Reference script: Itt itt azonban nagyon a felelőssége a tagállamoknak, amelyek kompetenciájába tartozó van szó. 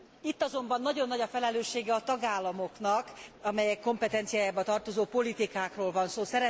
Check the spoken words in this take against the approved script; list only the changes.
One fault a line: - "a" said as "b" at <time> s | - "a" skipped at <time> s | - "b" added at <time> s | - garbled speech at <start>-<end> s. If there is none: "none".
- "itt" skipped at 0.4 s
- "nagy" added at 1.1 s
- "politikákról" added at 5.0 s